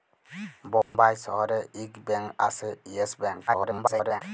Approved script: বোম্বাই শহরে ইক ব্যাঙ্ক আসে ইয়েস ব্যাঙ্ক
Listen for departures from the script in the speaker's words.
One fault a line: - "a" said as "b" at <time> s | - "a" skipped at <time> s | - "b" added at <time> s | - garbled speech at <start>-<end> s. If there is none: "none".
- garbled speech at 3.5-4.2 s